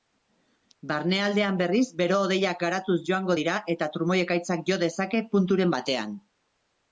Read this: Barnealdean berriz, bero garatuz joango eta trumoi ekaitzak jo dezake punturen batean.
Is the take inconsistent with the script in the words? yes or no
yes